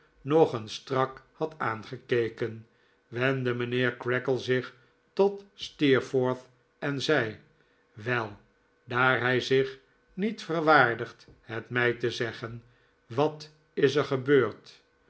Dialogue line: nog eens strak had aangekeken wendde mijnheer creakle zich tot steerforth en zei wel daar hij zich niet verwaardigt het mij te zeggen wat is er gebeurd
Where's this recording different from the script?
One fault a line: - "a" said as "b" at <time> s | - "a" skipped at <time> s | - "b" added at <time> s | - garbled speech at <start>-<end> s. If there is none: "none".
none